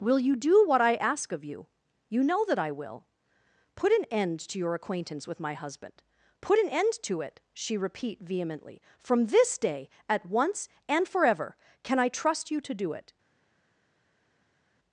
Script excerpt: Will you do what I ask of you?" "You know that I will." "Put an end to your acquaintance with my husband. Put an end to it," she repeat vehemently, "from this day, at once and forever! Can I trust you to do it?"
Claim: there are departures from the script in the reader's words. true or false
false